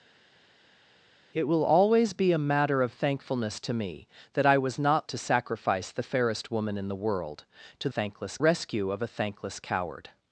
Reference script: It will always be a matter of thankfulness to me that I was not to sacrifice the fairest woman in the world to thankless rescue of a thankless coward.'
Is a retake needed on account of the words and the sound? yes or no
no